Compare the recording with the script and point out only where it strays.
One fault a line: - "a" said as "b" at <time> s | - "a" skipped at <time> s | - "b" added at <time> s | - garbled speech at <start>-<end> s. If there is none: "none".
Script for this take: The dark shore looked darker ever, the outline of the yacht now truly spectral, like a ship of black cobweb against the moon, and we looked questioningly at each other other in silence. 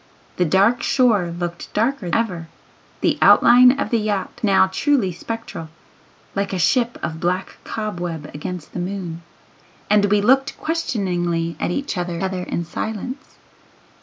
none